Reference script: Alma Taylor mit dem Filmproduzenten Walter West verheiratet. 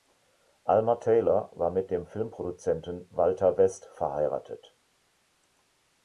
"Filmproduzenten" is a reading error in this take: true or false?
false